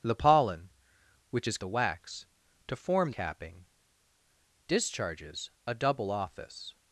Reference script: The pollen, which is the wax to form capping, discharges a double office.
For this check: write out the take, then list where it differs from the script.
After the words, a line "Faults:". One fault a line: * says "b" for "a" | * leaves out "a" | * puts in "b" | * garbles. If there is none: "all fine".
The pollen, which is the wax to form capping, discharges a double office.
Faults:
all fine